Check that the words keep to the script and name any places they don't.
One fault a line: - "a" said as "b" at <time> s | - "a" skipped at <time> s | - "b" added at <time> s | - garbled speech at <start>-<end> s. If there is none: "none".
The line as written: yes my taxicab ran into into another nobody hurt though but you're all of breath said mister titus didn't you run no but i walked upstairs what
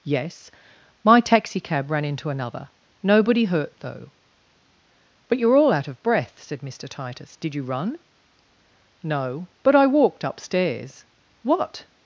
- "into" skipped at 2.3 s
- "out" added at 5.7 s
- "didn't" said as "did" at 7.3 s